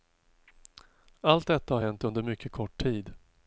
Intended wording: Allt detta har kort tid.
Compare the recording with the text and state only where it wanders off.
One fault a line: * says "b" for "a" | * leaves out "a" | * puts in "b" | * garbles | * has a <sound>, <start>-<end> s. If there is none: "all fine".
* puts in "hänt under mycket"